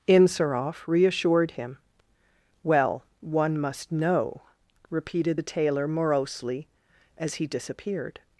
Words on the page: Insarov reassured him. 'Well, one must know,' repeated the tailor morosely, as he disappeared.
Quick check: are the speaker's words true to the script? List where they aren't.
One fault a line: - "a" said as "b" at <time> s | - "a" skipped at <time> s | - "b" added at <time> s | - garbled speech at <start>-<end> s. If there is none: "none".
none